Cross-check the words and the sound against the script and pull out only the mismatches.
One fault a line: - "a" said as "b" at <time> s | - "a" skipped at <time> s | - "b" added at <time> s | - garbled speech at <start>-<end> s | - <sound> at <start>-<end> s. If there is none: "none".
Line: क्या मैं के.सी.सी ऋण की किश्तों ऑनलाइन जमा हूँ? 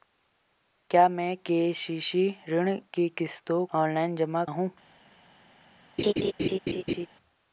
- laugh at 6.0-7.1 s